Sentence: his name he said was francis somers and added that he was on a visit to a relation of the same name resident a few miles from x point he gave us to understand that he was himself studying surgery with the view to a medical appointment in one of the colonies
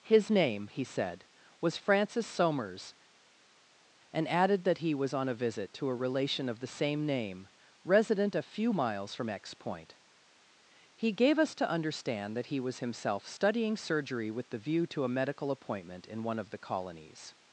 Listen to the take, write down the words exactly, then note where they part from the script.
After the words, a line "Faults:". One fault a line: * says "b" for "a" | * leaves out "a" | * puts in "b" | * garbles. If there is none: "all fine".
his name he said was francis somers and added that he was on a visit to a relation of the same name resident a few miles from x point he gave us to understand that he was himself studying surgery with the view to a medical appointment in one of the colonies
Faults:
all fine